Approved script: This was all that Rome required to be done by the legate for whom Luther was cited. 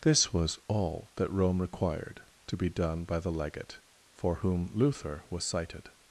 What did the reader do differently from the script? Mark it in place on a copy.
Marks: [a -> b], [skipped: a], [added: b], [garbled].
This was all that Rome required to be done by the legate for whom Luther was cited.